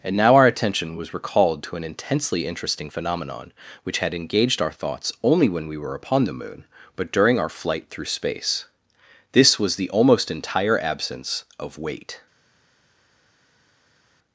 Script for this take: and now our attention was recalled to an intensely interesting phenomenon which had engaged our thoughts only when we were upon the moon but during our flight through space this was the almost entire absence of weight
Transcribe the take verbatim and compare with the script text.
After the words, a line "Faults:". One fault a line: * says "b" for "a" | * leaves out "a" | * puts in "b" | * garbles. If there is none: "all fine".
and now our attention was recalled to an intensely interesting phenomenon which had engaged our thoughts only when we were upon the moon but during our flight through space this was the almost entire absence of weight
Faults:
all fine